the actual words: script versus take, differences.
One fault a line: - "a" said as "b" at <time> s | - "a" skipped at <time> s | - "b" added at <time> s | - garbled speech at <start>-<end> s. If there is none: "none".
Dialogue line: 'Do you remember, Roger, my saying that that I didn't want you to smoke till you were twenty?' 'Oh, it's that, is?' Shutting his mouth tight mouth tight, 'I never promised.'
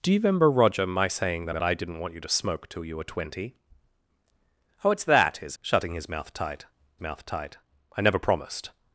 none